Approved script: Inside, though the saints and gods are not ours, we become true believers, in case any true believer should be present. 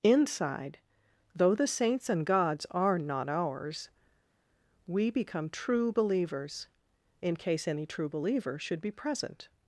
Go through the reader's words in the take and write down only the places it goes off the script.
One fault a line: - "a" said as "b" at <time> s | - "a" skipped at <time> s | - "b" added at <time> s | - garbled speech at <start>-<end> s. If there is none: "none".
none